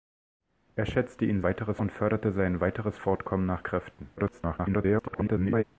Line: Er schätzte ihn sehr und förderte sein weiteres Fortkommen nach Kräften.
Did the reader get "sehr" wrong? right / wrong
wrong